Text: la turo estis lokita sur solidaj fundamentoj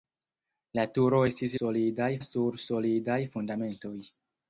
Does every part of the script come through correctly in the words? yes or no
no